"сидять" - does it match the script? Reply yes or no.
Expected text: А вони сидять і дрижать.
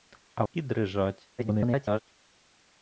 no